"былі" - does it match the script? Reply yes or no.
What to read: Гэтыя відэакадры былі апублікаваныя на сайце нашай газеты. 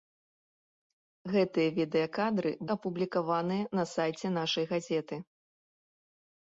no